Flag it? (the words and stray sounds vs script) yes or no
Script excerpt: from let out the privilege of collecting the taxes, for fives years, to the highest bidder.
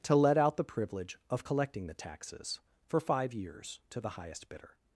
yes